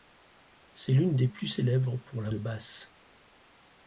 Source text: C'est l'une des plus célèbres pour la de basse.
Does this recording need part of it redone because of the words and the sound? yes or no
no